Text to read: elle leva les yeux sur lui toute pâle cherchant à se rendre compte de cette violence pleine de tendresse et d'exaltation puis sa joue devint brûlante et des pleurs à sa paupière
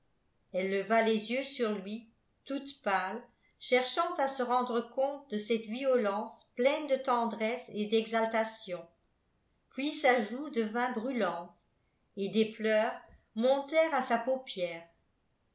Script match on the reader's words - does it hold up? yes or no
no